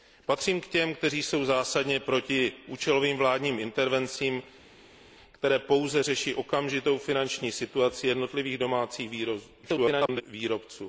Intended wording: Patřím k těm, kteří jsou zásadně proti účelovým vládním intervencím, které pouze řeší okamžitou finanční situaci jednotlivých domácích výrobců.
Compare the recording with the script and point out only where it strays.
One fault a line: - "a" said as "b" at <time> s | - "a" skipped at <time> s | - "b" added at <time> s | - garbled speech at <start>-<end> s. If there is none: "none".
- garbled speech at 9.6-10.2 s